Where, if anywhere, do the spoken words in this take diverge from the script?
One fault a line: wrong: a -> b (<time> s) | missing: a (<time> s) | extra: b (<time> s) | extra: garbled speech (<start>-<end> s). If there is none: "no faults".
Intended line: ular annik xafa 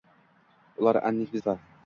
no faults